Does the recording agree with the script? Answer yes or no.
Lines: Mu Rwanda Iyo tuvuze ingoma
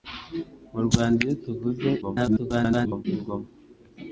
no